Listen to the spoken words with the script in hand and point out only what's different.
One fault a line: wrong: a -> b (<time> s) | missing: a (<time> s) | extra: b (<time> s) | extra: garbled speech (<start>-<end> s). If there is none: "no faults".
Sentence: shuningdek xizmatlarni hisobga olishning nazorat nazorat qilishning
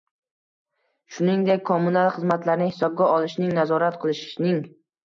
extra: kommunal (1.7 s)
missing: nazorat (4.0 s)